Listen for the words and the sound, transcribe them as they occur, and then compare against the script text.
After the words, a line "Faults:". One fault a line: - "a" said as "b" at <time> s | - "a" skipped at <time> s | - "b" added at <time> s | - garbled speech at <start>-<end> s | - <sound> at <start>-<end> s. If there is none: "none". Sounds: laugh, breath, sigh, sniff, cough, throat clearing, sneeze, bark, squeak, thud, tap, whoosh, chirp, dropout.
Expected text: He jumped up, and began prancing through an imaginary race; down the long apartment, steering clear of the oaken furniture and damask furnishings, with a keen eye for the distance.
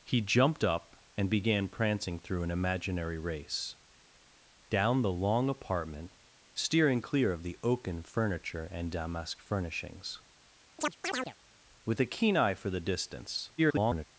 He jumped up, and began prancing through an imaginary race; down the long apartment, steering clear of the oaken furniture and damask furnishings, with a keen eye for the distance. [garbled]
Faults:
- chirp at 10.8-11.4 s
- garbled speech at 13.6-14.1 s